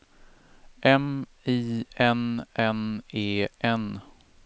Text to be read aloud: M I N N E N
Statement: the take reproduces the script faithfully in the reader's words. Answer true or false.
true